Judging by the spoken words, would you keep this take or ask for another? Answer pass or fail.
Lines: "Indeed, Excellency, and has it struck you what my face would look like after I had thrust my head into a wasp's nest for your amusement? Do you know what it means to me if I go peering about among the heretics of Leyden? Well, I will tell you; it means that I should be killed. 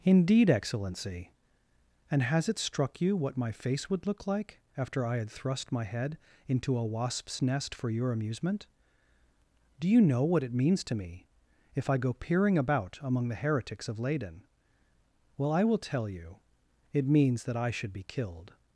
pass